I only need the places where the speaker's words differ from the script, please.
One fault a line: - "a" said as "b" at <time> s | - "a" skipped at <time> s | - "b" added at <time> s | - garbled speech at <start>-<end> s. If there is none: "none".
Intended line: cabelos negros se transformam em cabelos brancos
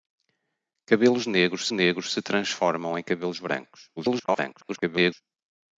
- "negros" added at 1.7 s
- garbled speech at 4.0-5.2 s